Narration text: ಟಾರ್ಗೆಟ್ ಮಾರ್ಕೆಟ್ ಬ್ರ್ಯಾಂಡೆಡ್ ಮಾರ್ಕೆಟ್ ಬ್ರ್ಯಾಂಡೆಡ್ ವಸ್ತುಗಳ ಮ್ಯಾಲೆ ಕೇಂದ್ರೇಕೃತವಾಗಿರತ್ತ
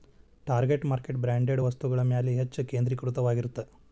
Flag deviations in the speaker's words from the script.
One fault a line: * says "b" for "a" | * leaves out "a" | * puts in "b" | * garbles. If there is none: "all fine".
* leaves out "ಮಾರ್ಕೆಟ್ ಬ್ರ್ಯಾಂಡೆಡ್"
* puts in "ಹೆಚ್ಚ್"